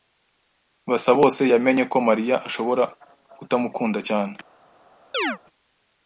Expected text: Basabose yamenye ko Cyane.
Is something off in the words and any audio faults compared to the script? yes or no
yes